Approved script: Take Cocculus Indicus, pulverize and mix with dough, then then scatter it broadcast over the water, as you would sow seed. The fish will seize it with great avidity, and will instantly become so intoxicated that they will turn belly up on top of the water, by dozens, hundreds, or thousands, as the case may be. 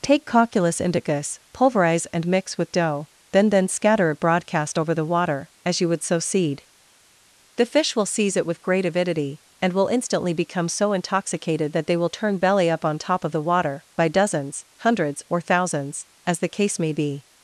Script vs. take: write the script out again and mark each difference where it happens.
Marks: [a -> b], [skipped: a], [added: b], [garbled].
Take Cocculus Indicus, pulverize and mix with dough, then then scatter it broadcast over the water, as you would sow seed. The fish will seize it with great avidity, and will instantly become so intoxicated that they will turn belly up on top of the water, by dozens, hundreds, or thousands, as the case may be.